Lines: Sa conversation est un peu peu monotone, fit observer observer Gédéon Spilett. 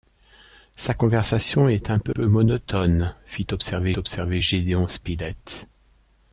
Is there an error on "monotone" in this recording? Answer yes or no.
no